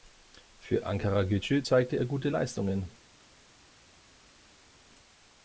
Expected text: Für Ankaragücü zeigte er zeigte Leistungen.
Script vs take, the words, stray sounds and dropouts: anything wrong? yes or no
yes